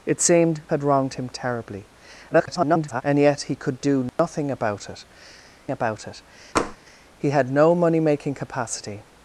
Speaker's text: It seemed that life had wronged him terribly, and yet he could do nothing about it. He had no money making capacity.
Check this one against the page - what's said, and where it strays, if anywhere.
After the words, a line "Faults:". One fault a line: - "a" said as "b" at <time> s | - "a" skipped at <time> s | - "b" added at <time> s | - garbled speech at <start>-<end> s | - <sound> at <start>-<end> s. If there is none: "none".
It seemed had wronged him terribly, [garbled] and yet he could do nothing about it about it. He had no money making capacity.
Faults:
- "that life" skipped at 0.6 s
- garbled speech at 2.3-3.0 s
- dropout at 4.1-4.2 s
- "about it" added at 5.7 s
- tap at 6.6-6.8 s